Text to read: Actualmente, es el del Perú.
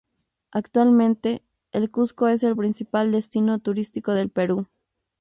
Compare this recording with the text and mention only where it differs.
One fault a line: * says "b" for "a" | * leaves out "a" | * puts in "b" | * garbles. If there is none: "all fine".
* puts in "el Cuzco"
* puts in "principal destino turístico"